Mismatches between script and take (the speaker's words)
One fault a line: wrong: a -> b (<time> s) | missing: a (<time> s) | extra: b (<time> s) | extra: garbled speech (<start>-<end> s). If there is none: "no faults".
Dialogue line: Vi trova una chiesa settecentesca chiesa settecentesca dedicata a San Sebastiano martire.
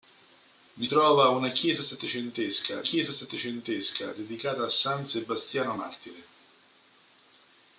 no faults